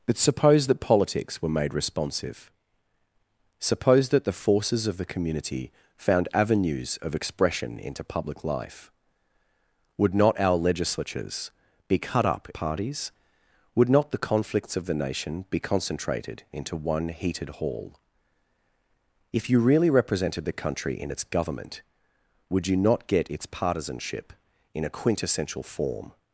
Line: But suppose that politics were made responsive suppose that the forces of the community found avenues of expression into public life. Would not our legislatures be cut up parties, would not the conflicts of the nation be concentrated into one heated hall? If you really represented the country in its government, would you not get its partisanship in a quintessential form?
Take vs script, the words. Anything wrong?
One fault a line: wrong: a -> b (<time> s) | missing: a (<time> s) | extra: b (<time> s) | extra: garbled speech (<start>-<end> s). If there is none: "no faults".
no faults